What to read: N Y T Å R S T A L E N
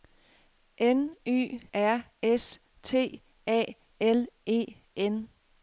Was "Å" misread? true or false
true